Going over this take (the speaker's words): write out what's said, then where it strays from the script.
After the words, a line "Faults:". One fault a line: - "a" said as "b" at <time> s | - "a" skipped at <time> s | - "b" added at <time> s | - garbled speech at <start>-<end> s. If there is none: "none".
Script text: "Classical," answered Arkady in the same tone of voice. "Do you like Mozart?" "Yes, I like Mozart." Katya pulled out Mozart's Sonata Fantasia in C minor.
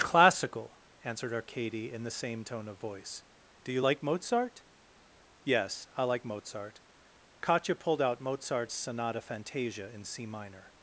"Classical," answered Arkady in the same tone of voice. "Do you like Mozart?" "Yes, I like Mozart." Katya pulled out Mozart's Sonata Fantasia in C minor.
Faults:
none